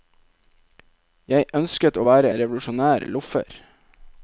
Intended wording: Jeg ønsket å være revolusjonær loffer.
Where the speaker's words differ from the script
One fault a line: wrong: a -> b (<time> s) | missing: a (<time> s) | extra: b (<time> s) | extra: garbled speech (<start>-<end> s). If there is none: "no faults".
no faults